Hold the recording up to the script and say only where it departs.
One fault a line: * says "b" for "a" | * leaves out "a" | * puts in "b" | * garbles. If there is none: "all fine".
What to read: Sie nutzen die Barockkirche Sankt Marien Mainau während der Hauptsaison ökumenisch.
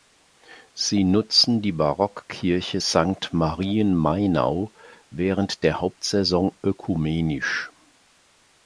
all fine